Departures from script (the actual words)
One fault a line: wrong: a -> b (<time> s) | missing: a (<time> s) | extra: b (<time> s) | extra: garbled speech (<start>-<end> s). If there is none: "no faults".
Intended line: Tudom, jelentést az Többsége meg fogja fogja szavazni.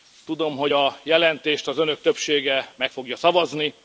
extra: hogy a (0.6 s)
extra: Önök (1.8 s)
missing: fogja (3.2 s)